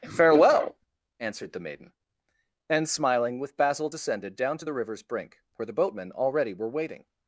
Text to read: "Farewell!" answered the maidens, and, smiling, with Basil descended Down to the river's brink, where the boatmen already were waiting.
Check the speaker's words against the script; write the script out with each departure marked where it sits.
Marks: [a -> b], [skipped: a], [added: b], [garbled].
"Farewell!" answered the [maidens, -> maiden] and, smiling, with Basil descended Down to the river's brink, where the boatmen already were waiting.